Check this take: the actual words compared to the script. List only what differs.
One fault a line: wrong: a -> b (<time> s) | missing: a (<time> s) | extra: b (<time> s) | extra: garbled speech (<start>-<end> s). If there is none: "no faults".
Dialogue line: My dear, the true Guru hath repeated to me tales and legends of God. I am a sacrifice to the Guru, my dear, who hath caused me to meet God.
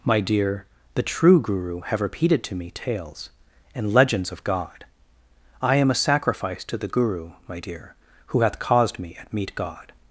wrong: hath -> have (1.8 s)
wrong: to -> at (9.2 s)